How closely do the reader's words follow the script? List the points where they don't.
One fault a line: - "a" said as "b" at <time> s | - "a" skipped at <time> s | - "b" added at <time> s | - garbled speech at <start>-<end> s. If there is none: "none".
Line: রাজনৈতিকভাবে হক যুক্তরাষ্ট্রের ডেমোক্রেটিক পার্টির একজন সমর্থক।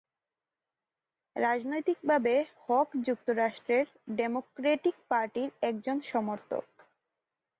none